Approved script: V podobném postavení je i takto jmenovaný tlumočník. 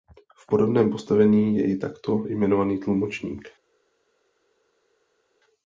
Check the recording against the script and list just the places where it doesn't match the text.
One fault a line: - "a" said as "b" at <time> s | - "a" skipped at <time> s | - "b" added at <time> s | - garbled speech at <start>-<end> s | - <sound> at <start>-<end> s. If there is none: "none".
none